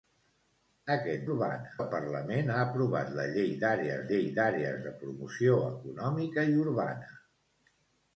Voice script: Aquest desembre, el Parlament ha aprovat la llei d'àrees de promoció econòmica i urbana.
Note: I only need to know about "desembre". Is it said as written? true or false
false